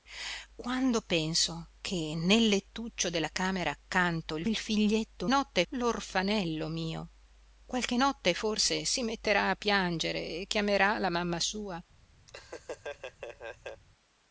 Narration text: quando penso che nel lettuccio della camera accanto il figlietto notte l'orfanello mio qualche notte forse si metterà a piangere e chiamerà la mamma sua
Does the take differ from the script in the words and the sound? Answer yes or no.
yes